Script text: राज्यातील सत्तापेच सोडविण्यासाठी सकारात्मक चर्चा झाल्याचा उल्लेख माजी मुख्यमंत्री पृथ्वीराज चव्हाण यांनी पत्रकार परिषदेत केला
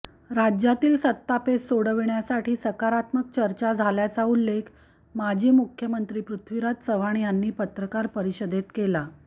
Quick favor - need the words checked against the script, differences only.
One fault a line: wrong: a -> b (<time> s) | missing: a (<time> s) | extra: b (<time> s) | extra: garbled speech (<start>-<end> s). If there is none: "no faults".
no faults